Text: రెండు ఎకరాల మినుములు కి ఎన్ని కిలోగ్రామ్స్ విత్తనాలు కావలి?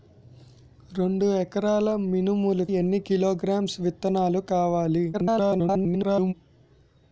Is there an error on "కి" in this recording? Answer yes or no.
yes